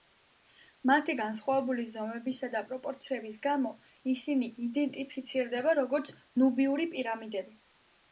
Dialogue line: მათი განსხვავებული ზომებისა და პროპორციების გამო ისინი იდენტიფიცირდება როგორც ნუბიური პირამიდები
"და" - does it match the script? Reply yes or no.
yes